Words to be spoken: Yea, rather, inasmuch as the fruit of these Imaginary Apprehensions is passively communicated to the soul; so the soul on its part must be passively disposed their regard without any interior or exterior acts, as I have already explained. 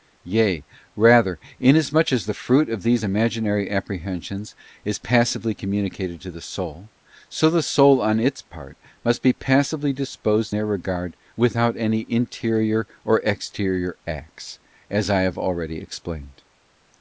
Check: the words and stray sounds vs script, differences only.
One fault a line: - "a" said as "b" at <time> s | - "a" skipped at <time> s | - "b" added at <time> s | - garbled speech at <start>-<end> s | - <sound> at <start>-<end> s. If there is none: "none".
none